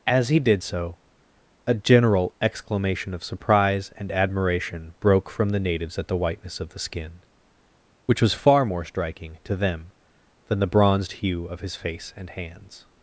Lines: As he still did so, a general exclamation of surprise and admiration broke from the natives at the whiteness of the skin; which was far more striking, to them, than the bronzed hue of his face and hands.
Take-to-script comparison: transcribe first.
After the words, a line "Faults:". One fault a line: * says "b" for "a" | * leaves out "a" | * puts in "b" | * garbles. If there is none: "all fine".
As he did so, a general exclamation of surprise and admiration broke from the natives at the whiteness of the skin; which was far more striking, to them, than the bronzed hue of his face and hands.
Faults:
* leaves out "still"